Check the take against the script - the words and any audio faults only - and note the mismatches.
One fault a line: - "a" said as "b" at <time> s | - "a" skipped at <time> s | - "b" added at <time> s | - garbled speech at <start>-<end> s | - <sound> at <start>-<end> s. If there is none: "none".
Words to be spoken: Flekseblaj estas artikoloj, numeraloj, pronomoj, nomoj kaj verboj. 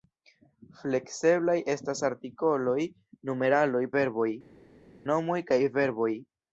- "pronomoj" said as "verboj" at 4.0 s